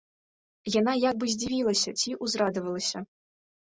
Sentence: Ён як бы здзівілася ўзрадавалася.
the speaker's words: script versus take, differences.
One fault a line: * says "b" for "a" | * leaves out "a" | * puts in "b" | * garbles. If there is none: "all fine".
* says "Яна" for "Ён"
* puts in "ці"